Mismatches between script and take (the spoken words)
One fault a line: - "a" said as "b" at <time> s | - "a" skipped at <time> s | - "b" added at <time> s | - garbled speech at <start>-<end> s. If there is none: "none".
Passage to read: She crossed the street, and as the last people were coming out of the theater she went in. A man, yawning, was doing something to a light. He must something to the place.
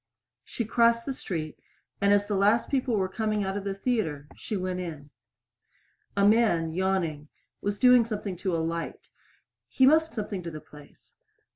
none